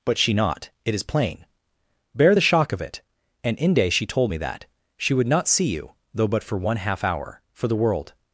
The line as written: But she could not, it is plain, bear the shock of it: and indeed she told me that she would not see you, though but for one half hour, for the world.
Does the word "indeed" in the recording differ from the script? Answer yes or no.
yes